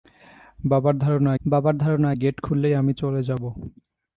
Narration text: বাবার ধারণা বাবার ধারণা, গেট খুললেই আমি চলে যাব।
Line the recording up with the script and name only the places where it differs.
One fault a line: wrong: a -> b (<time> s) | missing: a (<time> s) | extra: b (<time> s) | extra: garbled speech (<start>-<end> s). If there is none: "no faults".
no faults